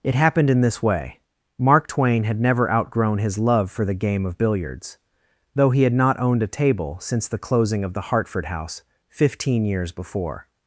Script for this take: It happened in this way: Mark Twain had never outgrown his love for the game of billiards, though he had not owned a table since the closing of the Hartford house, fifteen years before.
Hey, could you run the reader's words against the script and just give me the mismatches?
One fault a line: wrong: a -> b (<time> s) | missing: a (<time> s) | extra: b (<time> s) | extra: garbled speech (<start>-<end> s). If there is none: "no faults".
no faults